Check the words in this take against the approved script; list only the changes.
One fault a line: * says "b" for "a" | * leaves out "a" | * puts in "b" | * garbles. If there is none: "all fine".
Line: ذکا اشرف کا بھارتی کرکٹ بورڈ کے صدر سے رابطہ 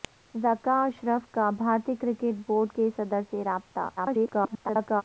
* garbles